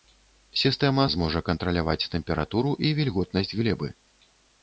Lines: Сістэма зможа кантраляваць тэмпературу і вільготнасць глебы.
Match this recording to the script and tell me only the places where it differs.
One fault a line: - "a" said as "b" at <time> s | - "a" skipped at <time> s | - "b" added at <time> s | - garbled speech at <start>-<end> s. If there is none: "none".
none